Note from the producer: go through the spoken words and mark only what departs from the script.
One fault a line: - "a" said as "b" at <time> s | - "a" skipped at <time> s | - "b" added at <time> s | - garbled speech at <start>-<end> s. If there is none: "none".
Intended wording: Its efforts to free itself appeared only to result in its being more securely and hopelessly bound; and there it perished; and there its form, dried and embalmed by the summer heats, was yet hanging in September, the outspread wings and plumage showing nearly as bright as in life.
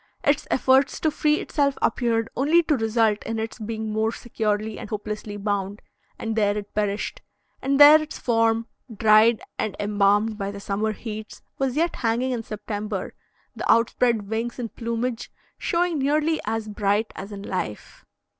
none